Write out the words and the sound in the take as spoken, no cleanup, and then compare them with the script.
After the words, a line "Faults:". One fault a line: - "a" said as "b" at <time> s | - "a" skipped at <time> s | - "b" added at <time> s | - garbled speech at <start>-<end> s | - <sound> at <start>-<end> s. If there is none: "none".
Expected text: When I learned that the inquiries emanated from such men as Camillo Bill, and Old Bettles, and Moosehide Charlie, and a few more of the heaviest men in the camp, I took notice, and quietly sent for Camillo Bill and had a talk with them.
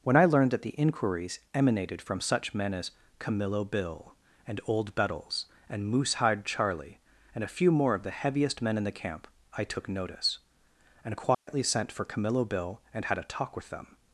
When I learned that the inquiries emanated from such men as Camillo Bill, and Old Bettles, and Moosehide Charlie, and a few more of the heaviest men in the camp, I took notice, and quietly sent for Camillo Bill and had a talk with them.
Faults:
- dropout at 11.3-11.5 s